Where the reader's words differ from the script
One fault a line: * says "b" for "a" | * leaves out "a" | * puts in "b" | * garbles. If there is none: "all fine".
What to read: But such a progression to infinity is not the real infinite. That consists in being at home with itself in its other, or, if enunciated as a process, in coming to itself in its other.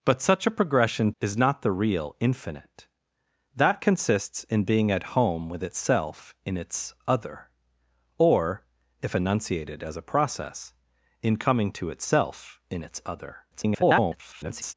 * leaves out "to infinity"
* garbles